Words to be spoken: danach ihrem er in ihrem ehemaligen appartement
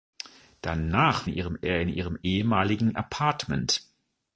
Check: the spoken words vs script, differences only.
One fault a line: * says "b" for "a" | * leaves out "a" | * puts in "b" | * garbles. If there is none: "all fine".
all fine